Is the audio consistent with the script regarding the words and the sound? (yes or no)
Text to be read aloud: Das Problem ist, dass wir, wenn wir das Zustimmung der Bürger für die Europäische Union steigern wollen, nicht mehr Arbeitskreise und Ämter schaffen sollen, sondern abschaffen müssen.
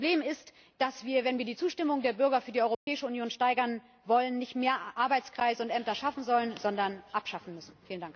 no